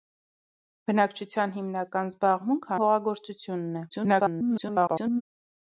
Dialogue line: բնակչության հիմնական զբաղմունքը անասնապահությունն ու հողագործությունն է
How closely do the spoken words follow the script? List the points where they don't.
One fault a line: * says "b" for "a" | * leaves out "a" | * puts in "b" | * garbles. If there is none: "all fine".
* leaves out "անասնապահությունն"
* garbles